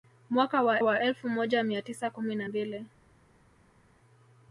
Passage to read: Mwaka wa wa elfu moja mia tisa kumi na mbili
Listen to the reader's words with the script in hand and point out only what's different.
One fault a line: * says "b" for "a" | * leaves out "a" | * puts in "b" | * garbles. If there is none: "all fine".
all fine